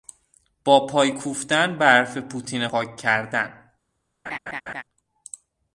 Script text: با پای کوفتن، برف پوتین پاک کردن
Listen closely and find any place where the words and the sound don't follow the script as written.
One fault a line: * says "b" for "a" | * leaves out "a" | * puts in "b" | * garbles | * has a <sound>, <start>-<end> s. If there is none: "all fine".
* has a laugh, 4.3-4.8 s